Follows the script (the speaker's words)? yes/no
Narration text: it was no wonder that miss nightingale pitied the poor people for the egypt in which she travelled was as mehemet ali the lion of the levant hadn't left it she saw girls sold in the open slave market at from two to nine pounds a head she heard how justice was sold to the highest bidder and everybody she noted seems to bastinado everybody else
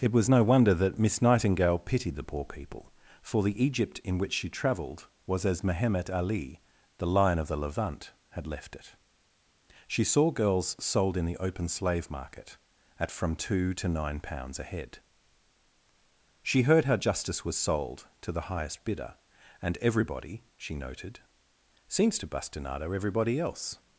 no